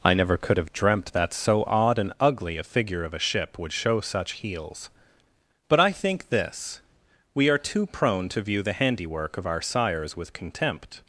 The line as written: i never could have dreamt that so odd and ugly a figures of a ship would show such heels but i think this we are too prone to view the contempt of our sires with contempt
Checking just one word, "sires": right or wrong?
right